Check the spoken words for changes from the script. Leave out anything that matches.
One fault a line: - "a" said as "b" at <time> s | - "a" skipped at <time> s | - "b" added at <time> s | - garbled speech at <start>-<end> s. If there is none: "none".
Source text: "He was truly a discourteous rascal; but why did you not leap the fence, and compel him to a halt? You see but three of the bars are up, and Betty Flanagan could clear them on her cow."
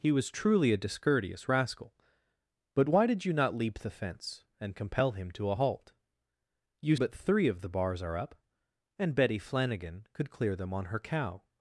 - "see" skipped at 7.0 s